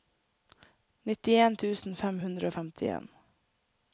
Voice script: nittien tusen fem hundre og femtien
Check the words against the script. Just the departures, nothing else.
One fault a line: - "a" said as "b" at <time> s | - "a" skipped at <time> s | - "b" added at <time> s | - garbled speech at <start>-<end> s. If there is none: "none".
none